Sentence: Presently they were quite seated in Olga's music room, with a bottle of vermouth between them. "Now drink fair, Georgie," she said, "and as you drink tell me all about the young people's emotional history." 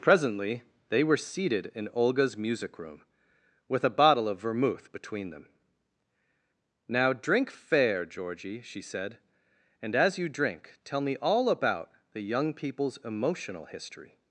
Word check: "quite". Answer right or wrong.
wrong